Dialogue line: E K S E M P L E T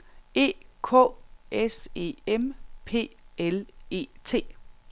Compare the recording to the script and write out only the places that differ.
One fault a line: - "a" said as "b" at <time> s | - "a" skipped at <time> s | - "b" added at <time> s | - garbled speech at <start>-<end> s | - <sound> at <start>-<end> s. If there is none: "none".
none